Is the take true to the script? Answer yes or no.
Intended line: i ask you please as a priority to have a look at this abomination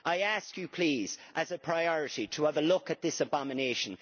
yes